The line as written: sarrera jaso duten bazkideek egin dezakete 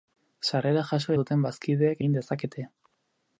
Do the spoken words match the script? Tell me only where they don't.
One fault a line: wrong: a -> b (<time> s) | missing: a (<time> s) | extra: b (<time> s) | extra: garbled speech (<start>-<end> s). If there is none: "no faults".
no faults